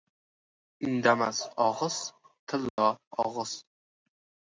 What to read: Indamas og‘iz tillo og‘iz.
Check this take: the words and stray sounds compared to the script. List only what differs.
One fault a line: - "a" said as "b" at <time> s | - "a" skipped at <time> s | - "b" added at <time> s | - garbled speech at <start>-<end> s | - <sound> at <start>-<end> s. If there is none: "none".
- dropout at 2.7-2.8 s